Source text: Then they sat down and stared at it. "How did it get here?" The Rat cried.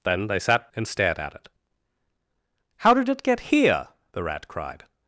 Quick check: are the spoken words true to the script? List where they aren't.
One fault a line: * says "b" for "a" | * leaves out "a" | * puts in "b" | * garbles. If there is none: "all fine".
* leaves out "down"